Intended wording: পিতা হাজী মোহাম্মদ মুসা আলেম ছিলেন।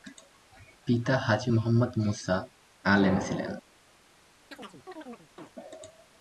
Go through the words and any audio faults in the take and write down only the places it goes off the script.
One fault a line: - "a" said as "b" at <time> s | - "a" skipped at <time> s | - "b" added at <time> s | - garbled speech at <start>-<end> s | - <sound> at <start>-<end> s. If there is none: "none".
- chirp at 4.5-5.5 s